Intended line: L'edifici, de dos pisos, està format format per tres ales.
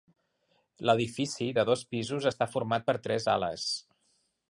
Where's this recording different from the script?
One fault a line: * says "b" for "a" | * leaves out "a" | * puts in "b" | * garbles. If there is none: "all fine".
* leaves out "format"